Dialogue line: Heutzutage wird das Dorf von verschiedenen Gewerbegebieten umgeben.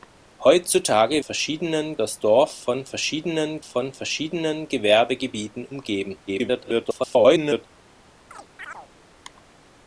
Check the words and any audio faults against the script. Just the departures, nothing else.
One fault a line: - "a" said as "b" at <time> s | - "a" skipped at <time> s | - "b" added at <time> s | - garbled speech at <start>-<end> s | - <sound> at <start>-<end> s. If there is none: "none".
- "wird" said as "verschiedenen" at 1.2 s
- "von verschiedenen" added at 3.6 s
- garbled speech at 6.3-7.7 s
- chirp at 8.3-8.9 s